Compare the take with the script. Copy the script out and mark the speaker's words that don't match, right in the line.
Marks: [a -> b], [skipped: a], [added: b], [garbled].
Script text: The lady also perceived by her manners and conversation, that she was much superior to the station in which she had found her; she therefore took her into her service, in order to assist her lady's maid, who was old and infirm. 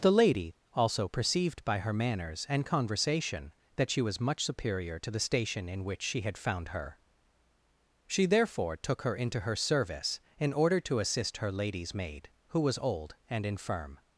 The lady also perceived by her manners and conversation, that she was much superior to the station in which she had found her; she therefore took her into her service, in order to assist her lady's maid, who was old and infirm.